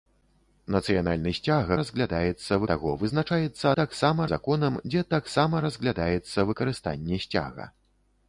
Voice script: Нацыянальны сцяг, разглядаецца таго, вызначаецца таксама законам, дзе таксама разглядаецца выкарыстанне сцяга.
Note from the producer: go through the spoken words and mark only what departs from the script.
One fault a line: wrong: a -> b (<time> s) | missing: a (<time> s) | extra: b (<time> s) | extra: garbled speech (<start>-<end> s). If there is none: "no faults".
no faults